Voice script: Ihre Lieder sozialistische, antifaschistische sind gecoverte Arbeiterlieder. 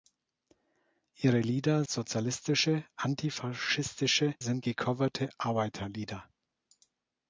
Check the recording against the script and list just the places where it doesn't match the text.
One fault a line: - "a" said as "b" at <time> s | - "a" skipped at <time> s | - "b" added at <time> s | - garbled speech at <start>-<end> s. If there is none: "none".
none